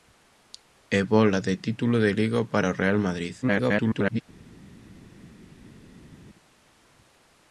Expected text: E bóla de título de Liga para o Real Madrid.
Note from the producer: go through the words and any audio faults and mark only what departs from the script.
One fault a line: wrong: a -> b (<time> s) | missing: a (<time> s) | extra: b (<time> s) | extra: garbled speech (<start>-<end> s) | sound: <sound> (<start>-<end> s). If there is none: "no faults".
extra: garbled speech (3.4-4.2 s)